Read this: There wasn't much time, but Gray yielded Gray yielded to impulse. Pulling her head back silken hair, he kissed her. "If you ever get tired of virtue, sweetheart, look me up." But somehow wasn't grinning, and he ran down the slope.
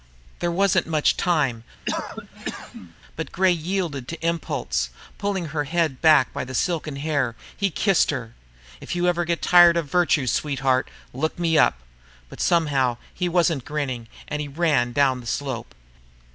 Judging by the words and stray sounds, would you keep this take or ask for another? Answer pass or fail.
fail